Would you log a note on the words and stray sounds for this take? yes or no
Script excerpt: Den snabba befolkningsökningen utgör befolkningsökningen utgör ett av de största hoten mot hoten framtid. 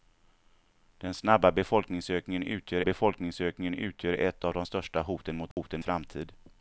yes